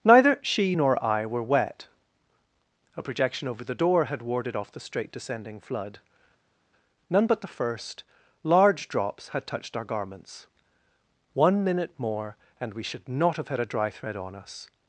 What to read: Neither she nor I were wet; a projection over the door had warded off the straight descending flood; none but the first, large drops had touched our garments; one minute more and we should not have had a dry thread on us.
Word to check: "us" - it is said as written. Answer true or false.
true